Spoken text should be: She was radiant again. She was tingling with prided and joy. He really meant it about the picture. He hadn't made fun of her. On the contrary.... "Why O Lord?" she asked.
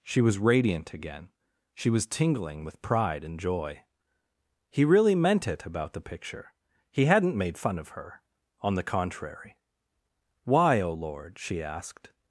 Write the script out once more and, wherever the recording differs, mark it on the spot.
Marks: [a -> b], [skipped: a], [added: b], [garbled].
She was radiant again. She was tingling with [prided -> pride] and joy. He really meant it about the picture. He hadn't made fun of her. On the contrary.... "Why O Lord?" she asked.